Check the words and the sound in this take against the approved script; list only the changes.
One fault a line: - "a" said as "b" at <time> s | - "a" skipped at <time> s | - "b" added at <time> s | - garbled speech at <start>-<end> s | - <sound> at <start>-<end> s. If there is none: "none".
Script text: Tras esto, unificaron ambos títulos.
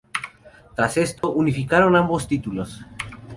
- dropout at 1.2-1.2 s